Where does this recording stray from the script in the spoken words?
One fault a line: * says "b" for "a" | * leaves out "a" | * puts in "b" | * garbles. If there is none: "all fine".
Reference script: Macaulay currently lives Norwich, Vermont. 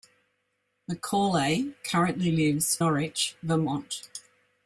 all fine